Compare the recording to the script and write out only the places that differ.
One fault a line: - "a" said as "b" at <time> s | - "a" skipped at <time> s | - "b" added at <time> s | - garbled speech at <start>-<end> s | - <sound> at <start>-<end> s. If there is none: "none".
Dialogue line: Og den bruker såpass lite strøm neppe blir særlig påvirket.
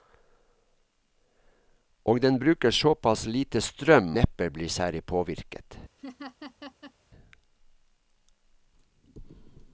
- laugh at 6.0-6.9 s